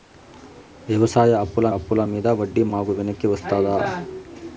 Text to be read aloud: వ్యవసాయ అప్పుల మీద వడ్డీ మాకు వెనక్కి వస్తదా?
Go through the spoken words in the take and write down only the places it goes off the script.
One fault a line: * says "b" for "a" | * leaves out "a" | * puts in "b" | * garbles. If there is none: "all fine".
* puts in "అప్పుల"